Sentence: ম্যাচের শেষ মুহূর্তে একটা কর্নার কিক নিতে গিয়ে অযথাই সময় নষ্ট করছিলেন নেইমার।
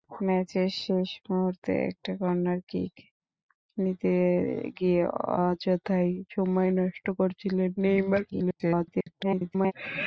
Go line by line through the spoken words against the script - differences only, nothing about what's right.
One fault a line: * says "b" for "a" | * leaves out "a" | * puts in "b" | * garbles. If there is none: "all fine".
* garbles